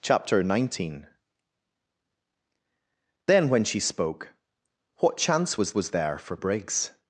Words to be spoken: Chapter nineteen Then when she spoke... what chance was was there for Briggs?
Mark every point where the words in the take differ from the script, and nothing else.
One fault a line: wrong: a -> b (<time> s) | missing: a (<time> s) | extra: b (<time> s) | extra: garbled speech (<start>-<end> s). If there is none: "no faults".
no faults